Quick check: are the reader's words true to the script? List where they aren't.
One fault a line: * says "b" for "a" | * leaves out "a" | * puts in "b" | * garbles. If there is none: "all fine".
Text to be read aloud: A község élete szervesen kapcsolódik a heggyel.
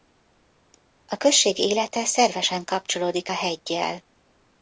all fine